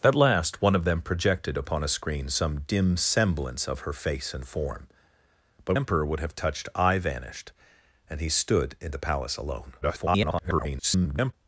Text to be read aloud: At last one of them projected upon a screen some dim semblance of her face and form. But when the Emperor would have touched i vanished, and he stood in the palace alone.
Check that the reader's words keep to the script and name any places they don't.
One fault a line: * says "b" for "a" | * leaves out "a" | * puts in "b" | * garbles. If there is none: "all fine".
* leaves out "when the"
* garbles